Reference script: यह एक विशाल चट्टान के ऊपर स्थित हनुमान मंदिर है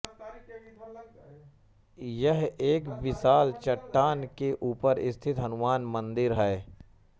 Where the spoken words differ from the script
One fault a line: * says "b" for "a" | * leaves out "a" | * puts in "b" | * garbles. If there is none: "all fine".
all fine